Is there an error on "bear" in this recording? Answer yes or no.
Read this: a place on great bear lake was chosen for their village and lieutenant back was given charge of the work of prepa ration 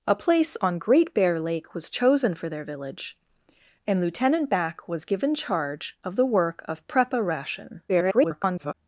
no